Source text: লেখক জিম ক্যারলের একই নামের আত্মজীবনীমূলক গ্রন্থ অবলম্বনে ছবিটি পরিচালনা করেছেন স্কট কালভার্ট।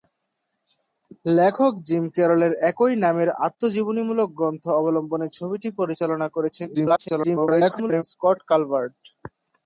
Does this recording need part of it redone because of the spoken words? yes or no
yes